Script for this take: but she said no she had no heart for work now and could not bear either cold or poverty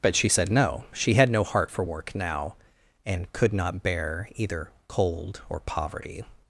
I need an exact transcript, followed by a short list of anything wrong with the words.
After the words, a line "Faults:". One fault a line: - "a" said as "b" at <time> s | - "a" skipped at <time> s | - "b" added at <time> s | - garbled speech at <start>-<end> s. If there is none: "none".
but she said no she had no heart for work now and could not bear either cold or poverty
Faults:
none